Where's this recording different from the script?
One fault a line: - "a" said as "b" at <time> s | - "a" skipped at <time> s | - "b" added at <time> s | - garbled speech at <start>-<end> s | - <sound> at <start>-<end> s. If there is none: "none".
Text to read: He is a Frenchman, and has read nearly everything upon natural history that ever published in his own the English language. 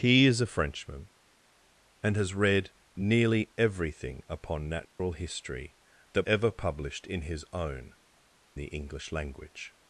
- dropout at 4.8-5.0 s